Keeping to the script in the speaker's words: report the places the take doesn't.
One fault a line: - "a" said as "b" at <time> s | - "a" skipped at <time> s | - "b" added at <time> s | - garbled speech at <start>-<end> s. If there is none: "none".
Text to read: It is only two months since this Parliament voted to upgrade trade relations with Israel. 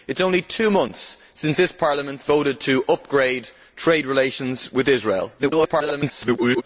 - garbled speech at 5.4-6.6 s